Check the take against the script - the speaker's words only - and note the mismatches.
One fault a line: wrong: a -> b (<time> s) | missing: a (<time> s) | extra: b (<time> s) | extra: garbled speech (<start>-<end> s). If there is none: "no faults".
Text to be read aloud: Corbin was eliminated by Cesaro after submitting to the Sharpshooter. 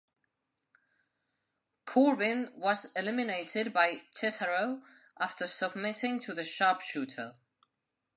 no faults